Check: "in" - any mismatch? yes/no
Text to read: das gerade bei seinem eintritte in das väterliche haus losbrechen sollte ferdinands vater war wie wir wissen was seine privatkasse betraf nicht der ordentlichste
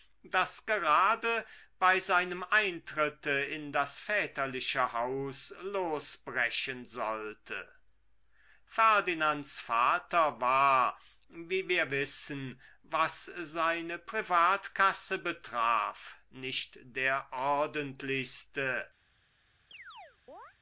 no